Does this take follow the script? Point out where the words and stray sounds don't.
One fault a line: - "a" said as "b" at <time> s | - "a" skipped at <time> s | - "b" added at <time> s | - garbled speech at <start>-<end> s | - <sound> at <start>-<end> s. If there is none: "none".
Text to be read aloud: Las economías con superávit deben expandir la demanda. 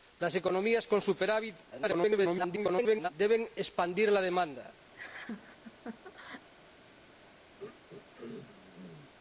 - garbled speech at 1.7-3.1 s
- laugh at 4.9-6.5 s
- throat clearing at 7.6-9.1 s